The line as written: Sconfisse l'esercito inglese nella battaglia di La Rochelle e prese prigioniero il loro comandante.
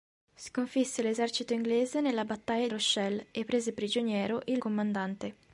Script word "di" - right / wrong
wrong